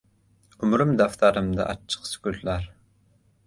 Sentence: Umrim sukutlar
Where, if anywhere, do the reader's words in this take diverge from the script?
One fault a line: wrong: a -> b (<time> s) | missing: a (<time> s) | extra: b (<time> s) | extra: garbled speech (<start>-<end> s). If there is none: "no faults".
extra: daftarimda achchiq (1.0 s)